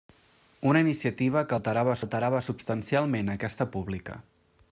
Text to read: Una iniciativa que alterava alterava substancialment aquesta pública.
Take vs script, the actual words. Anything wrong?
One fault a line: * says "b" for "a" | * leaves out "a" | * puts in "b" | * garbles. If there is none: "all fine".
all fine